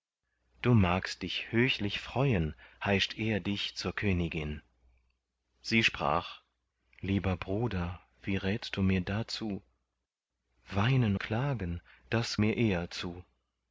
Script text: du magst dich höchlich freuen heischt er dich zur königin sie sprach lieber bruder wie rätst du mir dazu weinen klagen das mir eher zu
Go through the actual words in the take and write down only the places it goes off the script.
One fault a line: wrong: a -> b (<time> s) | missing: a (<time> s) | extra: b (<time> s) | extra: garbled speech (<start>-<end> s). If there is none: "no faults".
no faults